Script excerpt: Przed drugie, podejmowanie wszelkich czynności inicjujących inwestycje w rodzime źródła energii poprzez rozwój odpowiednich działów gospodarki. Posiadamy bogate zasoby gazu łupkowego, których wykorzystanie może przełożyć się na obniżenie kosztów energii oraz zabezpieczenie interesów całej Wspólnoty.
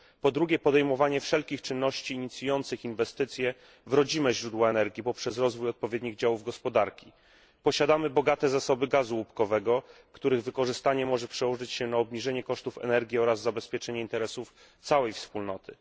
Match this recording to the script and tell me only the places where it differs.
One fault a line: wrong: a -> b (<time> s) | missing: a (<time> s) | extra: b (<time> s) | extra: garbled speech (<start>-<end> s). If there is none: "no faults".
wrong: Przed -> Po (0.2 s)